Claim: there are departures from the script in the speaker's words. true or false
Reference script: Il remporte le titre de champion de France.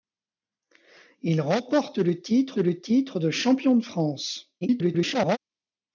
true